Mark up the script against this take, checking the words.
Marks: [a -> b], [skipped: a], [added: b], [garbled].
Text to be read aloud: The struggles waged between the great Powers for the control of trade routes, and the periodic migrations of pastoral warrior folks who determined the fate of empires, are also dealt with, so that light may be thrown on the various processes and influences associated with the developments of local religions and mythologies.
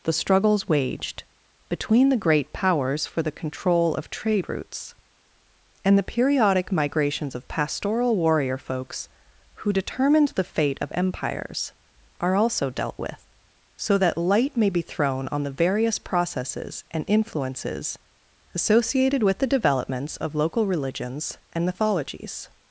The struggles waged between the great Powers for the control of trade routes, and the periodic migrations of pastoral warrior folks who determined the fate of empires, are also dealt with, so that light may be thrown on the various processes and influences associated with the developments of local religions and mythologies.